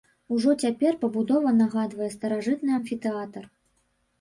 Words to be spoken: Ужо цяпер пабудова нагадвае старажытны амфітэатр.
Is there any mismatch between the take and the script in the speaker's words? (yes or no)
no